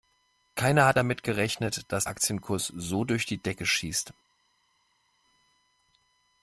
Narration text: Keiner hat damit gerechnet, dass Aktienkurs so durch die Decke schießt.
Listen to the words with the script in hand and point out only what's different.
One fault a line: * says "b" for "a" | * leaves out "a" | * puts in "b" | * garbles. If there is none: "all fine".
all fine